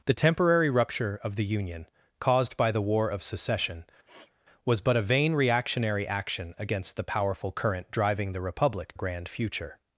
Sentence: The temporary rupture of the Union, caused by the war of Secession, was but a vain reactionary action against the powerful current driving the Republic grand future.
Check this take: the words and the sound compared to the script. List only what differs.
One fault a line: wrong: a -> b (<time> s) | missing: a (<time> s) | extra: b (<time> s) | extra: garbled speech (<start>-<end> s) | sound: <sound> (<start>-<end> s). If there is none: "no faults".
sound: sniff (4.0-4.3 s)